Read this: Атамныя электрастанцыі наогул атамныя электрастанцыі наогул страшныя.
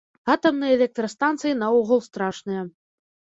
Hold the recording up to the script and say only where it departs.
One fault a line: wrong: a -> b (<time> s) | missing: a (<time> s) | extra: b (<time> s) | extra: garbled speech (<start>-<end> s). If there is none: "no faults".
missing: атамныя электрастанцыі наогул (2.0 s)